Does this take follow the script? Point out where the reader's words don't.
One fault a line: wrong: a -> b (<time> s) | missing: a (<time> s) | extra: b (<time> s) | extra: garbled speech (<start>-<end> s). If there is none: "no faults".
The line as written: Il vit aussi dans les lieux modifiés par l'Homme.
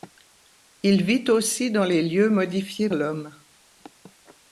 missing: par (2.9 s)